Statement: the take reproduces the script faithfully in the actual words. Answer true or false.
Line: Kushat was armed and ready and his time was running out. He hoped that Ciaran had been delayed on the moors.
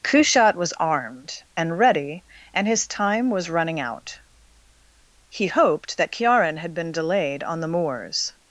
true